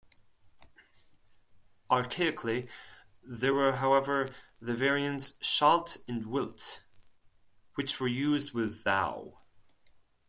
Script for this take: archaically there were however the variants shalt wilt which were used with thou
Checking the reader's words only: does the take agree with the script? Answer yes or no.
no